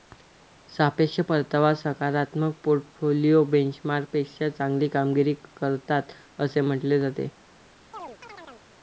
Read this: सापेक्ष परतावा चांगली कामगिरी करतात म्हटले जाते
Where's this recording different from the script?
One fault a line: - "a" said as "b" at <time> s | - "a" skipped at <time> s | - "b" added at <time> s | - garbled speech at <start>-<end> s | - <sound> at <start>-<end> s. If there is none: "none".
- "सकारात्मक पोर्टफोलिओ बेंचमार्कपेक्षा" added at 1.8 s
- "असे" added at 6.4 s
- chirp at 7.9-8.7 s